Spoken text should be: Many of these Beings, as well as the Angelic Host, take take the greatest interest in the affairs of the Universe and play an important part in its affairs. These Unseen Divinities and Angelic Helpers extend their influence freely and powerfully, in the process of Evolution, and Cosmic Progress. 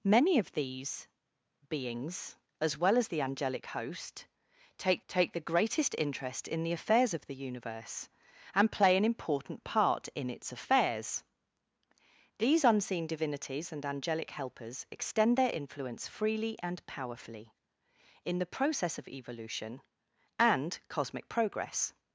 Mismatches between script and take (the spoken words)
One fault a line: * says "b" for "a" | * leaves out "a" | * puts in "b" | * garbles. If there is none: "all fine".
all fine